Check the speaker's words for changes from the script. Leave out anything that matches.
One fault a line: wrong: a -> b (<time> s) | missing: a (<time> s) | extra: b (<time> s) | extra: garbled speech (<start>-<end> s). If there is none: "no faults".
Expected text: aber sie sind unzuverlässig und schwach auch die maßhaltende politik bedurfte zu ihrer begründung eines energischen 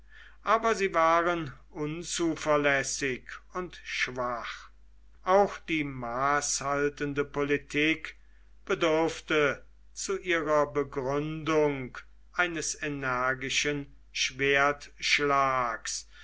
wrong: sind -> waren (0.9 s)